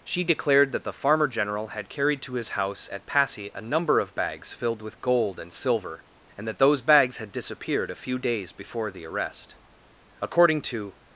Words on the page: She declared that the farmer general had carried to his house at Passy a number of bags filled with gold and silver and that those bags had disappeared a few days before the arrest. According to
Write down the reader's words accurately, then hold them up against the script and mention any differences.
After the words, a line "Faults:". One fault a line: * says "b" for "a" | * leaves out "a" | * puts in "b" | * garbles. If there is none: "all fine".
She declared that the farmer general had carried to his house at Passy a number of bags filled with gold and silver and that those bags had disappeared a few days before the arrest. According to
Faults:
all fine